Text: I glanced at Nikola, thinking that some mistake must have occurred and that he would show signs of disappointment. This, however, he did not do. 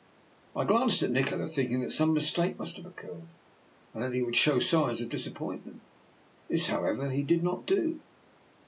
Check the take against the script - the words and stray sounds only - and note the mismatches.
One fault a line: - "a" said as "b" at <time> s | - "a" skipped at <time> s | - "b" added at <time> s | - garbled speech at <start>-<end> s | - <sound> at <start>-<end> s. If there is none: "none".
none